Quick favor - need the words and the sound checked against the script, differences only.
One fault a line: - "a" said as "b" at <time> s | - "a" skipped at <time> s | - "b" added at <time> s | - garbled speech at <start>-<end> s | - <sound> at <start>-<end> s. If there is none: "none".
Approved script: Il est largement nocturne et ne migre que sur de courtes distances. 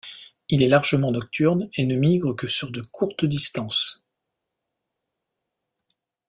none